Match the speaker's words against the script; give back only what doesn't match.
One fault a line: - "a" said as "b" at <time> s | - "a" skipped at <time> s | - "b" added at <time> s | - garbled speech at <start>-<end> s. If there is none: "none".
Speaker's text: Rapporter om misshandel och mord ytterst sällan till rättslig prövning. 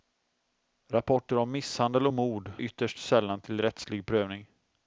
none